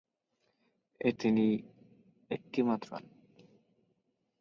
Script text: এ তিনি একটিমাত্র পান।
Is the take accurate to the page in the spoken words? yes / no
yes